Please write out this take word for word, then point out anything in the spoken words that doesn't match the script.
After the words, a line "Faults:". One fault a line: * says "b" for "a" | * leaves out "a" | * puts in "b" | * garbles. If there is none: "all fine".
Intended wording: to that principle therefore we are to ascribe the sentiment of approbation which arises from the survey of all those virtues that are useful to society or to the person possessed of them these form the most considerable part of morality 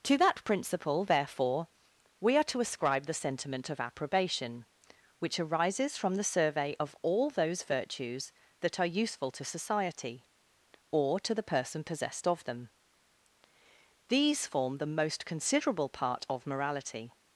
to that principle therefore we are to ascribe the sentiment of approbation which arises from the survey of all those virtues that are useful to society or to the person possessed of them these form the most considerable part of morality
Faults:
all fine